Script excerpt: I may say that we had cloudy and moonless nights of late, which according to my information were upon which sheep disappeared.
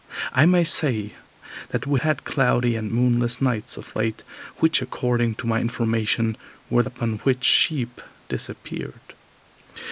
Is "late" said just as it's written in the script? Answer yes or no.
yes